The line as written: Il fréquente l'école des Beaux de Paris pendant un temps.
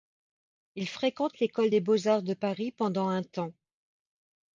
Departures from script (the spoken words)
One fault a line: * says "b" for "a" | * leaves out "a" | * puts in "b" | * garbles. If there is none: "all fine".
* puts in "arts"